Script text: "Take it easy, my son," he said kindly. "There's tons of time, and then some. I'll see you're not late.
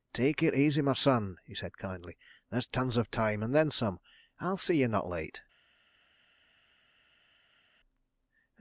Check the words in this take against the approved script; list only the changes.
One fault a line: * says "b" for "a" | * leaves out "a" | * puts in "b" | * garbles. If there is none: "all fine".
all fine